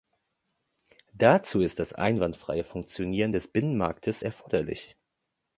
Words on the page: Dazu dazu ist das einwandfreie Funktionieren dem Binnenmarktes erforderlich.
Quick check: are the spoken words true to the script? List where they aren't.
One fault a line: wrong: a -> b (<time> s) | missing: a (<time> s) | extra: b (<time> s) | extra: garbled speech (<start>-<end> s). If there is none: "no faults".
missing: dazu (1.6 s)
wrong: dem -> des (3.3 s)